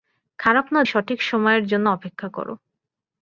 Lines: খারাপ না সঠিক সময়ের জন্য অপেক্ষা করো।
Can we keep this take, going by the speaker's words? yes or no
yes